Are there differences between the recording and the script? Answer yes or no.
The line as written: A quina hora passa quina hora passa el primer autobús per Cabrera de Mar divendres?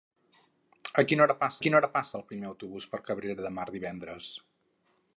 no